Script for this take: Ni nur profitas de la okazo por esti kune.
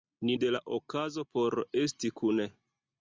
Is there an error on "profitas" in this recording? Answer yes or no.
yes